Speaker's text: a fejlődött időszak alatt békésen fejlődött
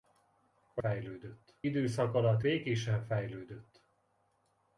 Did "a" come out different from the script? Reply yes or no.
no